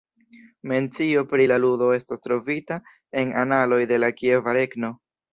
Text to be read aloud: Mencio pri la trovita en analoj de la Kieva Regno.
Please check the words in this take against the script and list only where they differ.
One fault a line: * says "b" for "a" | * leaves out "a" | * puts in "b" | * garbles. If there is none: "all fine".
* puts in "ludo estas"